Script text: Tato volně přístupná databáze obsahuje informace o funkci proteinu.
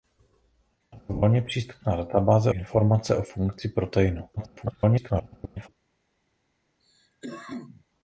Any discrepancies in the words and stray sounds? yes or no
yes